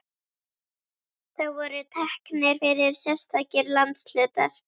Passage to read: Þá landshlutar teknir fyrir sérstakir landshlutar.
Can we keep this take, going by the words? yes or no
no